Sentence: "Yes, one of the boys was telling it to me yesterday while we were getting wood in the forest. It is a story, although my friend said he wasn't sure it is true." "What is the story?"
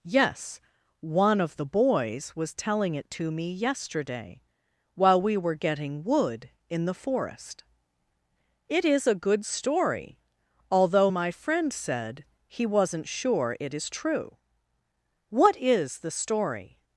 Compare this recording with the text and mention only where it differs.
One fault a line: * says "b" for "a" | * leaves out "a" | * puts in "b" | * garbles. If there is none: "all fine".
* puts in "good"